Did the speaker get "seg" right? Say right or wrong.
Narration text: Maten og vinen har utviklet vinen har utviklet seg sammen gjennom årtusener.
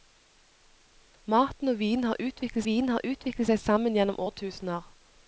right